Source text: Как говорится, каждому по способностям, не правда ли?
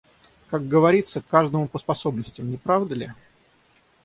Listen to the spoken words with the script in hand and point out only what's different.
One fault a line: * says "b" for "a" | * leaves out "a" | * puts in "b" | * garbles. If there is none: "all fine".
all fine